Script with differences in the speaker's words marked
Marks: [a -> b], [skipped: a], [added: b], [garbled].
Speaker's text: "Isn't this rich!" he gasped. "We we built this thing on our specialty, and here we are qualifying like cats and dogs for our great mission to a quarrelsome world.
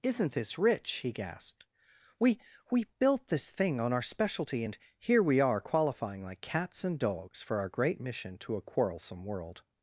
"Isn't this rich!" he gasped. "We we built this thing on our specialty, and here we are qualifying like cats and dogs for our great mission to a quarrelsome world.